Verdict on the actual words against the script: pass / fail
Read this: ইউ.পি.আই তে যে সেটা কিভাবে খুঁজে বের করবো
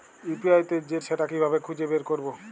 pass